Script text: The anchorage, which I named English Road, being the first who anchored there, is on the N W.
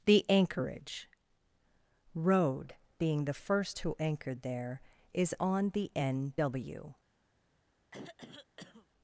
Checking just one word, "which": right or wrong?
wrong